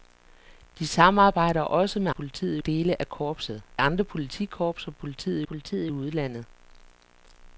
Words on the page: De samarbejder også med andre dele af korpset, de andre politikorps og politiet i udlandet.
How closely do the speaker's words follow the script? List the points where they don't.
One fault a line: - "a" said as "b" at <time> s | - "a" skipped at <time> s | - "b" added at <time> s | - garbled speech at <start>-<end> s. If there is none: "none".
- "andre" said as "politiet" at 2.1 s
- "de" skipped at 3.6 s
- "politiet" added at 5.4 s